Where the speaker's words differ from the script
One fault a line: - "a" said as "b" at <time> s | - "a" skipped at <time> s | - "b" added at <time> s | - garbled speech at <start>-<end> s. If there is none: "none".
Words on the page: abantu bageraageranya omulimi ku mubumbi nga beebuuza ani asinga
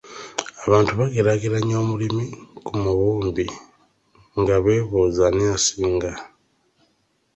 none